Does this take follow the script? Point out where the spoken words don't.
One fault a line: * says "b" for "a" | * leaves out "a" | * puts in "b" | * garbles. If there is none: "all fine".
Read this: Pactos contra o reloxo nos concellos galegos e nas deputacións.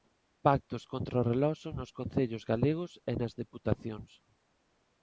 all fine